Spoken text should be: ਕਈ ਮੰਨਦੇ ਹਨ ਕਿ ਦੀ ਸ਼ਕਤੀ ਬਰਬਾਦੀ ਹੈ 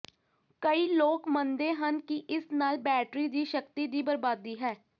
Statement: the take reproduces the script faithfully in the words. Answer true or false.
false